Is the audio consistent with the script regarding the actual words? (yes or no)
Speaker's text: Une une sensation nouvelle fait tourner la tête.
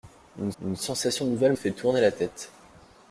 yes